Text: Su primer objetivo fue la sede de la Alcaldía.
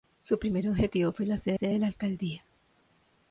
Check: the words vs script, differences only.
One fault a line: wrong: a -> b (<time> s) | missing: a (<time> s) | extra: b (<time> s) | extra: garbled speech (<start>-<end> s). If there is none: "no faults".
extra: sede (1.5 s)